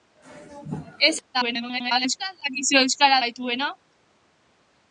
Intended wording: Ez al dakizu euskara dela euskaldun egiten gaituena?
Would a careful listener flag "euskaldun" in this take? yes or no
yes